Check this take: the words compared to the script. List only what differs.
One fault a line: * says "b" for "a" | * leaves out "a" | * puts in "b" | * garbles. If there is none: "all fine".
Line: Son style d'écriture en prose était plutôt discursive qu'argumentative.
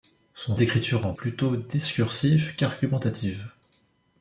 * leaves out "style"
* leaves out "prose était"